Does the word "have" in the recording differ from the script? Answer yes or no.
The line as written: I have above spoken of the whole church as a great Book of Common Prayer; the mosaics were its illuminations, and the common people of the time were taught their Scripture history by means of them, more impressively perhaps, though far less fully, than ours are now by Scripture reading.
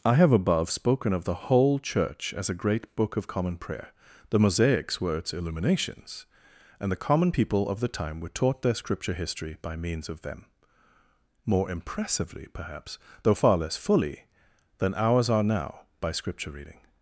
no